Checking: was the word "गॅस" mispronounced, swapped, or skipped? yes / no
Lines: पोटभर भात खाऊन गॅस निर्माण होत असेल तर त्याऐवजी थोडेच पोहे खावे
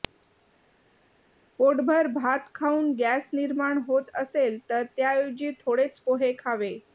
no